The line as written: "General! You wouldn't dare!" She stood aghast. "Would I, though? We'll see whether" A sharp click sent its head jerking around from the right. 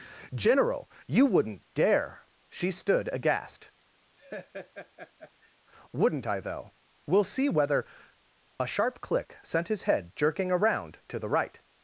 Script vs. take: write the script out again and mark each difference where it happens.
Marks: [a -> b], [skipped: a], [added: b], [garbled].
"General! You wouldn't dare!" She stood aghast. ["Would -> Wouldn't] I, though? We'll see whether" A sharp click sent [its -> his] head jerking around [from -> to] the right.